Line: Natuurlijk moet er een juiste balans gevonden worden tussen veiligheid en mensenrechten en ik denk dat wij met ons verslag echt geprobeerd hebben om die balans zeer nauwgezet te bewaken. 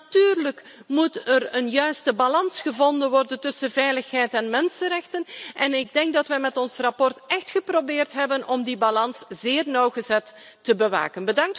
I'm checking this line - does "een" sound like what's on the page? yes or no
yes